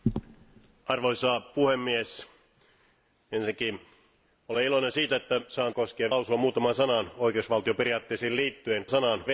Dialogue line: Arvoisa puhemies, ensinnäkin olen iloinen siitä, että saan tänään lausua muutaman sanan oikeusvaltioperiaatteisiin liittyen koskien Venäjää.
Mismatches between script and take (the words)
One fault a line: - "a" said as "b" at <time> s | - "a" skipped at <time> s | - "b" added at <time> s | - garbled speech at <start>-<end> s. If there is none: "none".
- "tänään" said as "koskien" at 5.7 s
- "koskien" said as "sanan" at 8.9 s